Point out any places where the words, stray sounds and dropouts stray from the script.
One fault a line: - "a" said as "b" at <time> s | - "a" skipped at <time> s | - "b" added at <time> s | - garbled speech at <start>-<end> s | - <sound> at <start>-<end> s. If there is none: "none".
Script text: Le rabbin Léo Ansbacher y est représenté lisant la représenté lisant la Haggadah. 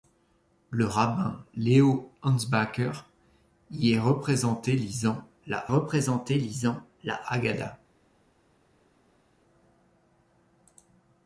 none